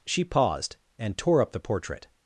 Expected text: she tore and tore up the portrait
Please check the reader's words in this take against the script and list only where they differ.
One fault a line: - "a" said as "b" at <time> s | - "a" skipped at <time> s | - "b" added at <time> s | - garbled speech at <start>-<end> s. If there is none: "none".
- "tore" said as "paused" at 0.2 s